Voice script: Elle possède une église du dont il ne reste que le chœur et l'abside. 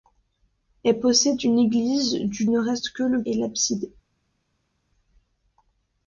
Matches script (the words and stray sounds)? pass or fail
fail